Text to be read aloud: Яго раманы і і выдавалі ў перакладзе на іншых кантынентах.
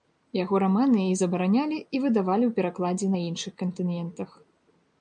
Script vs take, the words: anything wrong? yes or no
yes